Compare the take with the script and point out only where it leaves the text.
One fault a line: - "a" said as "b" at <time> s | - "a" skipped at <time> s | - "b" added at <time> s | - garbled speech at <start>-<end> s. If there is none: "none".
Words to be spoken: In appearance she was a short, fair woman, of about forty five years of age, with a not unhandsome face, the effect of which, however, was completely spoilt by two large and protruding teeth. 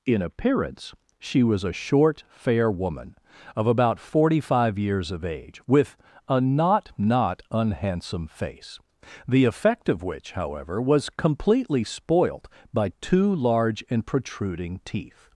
- "not" added at 7.0 s